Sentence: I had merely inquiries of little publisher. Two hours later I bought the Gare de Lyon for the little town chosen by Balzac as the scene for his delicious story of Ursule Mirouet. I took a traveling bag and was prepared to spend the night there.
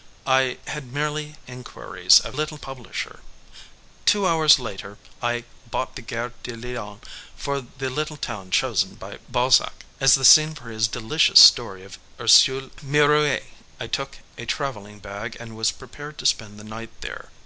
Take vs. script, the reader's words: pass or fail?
pass